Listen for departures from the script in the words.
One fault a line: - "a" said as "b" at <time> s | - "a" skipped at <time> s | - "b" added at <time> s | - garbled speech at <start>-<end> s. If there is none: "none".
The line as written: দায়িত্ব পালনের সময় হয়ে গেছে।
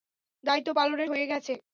- "সময়" skipped at 1.1 s